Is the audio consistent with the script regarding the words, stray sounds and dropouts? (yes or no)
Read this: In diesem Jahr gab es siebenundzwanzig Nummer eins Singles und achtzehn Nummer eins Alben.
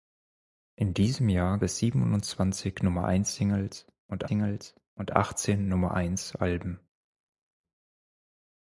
no